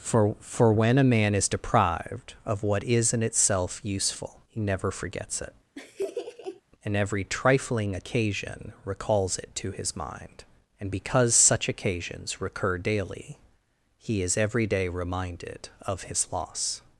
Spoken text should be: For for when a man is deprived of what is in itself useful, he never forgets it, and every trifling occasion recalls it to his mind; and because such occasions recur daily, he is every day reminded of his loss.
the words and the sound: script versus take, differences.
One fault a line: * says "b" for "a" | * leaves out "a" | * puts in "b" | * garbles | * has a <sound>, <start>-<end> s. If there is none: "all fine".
* has a laugh, 5.7-6.6 s